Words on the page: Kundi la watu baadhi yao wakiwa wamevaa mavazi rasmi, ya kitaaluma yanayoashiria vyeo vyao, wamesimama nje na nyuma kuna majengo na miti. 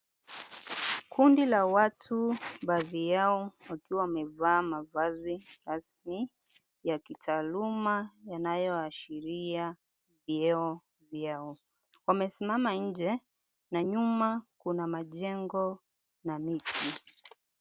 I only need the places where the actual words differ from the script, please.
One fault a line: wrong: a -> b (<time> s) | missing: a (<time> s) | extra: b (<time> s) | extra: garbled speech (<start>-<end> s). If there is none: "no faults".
no faults